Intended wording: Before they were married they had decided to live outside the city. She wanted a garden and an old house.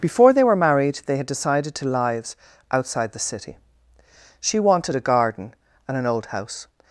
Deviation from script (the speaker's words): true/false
true